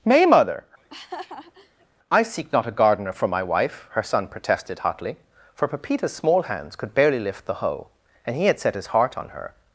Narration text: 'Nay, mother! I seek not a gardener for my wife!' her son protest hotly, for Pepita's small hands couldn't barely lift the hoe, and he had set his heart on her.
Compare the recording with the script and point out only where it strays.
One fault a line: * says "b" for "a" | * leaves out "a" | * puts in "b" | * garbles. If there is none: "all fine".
* says "protested" for "protest"
* says "could" for "couldn't"